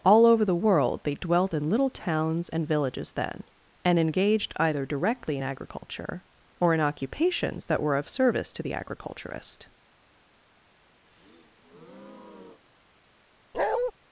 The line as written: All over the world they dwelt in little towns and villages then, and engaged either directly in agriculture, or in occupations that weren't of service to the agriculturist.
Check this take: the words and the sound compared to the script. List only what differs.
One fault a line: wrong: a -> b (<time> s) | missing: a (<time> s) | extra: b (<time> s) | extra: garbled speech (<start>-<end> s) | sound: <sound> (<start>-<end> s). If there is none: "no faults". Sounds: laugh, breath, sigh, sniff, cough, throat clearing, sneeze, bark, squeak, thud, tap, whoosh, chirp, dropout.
wrong: weren't -> were (7.8 s)
sound: breath (11.1-12.6 s)
sound: bark (13.5-13.9 s)